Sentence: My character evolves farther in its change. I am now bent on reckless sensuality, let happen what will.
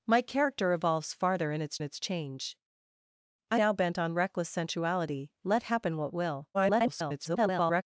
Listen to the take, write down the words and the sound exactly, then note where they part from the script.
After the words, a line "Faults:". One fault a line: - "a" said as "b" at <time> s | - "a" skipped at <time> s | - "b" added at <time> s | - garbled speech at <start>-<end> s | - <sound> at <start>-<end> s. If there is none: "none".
My character evolves farther in its its change. I now bent on reckless sensuality, let happen what will. [garbled]
Faults:
- "its" added at 1.8 s
- "am" skipped at 3.6 s
- garbled speech at 6.5-7.8 s